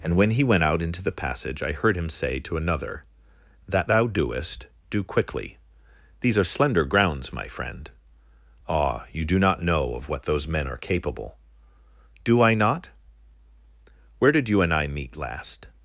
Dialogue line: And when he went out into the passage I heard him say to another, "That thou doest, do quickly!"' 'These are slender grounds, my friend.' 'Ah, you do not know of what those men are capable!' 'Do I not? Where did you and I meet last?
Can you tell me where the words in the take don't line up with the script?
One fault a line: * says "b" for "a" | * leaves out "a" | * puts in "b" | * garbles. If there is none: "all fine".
all fine